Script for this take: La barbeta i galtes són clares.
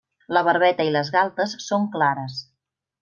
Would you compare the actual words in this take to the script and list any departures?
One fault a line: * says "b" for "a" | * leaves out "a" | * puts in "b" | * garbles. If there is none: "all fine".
* puts in "les"